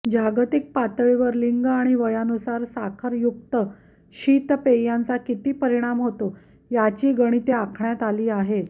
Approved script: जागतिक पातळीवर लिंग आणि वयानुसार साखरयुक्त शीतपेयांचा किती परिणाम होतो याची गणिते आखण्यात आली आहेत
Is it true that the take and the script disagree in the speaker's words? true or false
false